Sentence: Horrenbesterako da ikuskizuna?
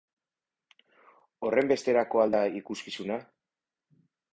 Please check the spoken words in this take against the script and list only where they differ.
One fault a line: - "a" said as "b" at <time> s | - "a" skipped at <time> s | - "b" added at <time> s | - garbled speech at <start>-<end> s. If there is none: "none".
- "al" added at 2.2 s